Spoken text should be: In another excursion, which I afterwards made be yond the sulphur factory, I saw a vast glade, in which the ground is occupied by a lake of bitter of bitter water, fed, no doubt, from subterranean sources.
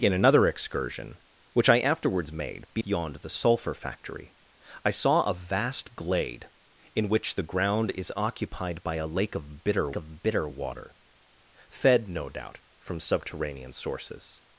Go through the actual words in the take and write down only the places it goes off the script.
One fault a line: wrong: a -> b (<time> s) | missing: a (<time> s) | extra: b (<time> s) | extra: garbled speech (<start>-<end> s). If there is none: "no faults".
no faults